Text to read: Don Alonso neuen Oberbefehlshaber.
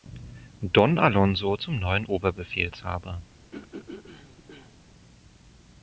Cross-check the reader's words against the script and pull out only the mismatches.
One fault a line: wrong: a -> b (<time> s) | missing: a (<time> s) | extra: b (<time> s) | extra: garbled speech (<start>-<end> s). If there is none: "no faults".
extra: zum (1.6 s)